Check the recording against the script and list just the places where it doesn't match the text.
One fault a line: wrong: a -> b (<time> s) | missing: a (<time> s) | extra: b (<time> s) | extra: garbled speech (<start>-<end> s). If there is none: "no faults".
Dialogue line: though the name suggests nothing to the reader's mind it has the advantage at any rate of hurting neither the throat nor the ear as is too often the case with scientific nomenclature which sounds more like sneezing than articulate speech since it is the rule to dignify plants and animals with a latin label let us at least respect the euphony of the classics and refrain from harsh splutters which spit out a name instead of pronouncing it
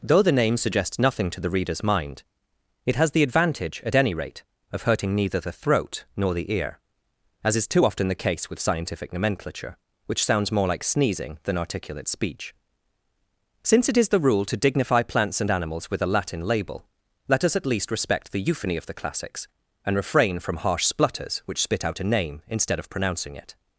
no faults